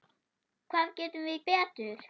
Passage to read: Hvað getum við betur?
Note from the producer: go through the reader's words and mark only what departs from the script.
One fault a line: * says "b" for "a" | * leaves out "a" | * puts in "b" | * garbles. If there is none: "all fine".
all fine